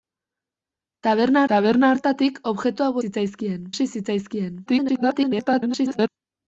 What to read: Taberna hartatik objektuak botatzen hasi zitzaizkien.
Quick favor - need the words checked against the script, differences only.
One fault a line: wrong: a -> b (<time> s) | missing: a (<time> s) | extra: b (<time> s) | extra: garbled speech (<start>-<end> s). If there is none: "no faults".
extra: taberna (1.5 s)
wrong: botatzen -> zitzaizkien (3.1 s)
extra: garbled speech (4.7-6.1 s)